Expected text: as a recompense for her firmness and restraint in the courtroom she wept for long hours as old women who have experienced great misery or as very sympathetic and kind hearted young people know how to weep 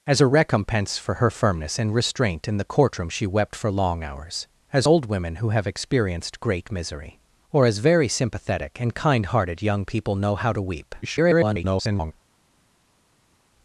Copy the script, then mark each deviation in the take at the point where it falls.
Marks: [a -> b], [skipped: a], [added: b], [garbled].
as a recompense for her firmness and restraint in the courtroom she wept for long hours as old women who have experienced great misery or as very sympathetic and kind hearted young people know how to weep [garbled]